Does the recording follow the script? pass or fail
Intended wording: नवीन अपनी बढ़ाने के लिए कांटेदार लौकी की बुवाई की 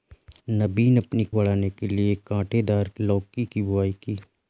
pass